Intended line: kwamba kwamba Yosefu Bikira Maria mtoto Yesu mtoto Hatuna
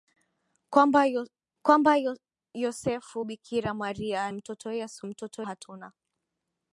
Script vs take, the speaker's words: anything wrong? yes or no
no